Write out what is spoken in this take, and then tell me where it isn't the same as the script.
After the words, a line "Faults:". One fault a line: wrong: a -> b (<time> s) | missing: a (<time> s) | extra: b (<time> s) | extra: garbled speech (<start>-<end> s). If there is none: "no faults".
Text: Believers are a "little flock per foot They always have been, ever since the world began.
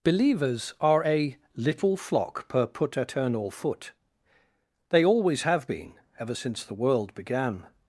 Believers are a "little flock per put eternal foot They always have been, ever since the world began.
Faults:
extra: put eternal (2.7 s)